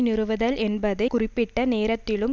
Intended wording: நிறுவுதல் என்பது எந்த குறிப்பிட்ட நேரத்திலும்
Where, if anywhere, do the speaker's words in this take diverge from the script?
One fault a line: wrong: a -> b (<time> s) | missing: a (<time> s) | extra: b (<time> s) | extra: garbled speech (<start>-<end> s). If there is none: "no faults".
missing: எந்த (1.1 s)